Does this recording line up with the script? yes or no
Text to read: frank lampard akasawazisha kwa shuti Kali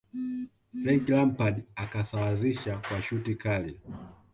yes